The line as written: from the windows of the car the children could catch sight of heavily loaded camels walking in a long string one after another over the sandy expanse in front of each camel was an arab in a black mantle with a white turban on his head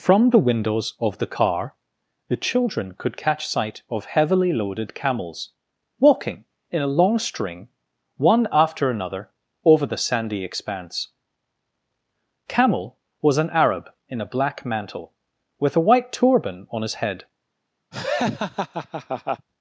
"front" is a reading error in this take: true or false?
true